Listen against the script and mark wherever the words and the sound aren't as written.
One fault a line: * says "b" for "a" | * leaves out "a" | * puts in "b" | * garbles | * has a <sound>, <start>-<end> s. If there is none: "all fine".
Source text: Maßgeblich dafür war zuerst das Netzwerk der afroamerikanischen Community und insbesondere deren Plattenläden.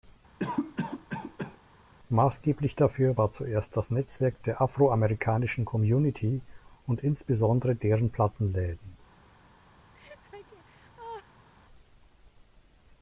* has a cough, 0.4-1.6 s
* has a laugh, 9.9-11.5 s